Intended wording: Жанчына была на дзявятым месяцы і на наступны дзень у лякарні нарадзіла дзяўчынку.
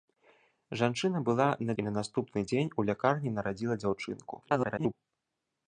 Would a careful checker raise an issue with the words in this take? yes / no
yes